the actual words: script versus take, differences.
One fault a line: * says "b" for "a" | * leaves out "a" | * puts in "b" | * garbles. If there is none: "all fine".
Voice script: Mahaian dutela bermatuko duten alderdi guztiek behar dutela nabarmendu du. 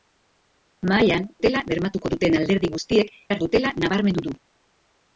all fine